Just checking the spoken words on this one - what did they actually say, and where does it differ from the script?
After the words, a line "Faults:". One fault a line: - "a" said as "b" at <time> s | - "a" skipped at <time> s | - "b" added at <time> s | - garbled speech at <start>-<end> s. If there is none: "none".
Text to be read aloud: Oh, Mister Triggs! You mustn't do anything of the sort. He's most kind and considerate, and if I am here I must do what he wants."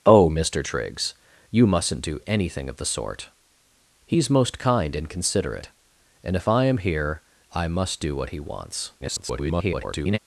Oh, Mister Triggs! You mustn't do anything of the sort. He's most kind and considerate, and if I am here I must do what he wants." [garbled]
Faults:
- garbled speech at 9.0-10.2 s